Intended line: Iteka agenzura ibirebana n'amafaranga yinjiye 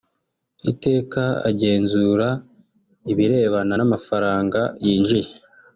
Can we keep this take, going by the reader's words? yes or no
yes